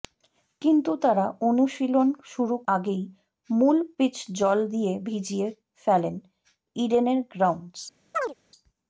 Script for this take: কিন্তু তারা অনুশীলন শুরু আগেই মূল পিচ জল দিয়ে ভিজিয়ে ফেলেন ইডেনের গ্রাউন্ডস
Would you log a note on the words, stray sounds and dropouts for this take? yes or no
yes